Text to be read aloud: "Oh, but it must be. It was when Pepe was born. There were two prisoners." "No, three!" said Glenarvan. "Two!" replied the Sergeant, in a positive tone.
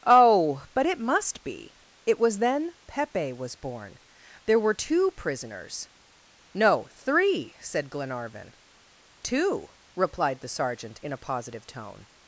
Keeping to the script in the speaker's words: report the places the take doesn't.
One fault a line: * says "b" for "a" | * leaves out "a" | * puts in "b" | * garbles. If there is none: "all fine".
* says "then" for "when"